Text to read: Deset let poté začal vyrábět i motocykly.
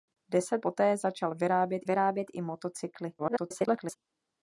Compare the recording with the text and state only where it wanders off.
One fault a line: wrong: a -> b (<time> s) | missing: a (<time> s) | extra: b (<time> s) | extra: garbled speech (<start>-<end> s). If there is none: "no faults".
missing: let (0.7 s)
extra: vyrábět (1.8 s)
extra: garbled speech (3.2-4.0 s)